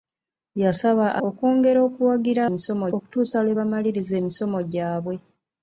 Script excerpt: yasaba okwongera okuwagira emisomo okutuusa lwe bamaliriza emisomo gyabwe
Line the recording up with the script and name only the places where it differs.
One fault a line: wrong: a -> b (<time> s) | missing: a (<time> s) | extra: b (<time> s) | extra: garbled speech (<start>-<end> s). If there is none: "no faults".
no faults